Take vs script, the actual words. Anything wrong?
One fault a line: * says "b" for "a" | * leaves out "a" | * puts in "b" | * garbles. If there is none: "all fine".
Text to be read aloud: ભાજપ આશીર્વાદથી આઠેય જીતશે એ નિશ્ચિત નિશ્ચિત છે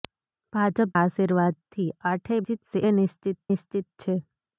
all fine